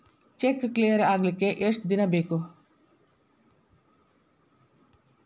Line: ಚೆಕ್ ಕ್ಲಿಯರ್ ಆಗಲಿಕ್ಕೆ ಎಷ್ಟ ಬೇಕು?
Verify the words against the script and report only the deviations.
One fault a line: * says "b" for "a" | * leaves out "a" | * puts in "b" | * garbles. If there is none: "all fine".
* puts in "ದಿನ"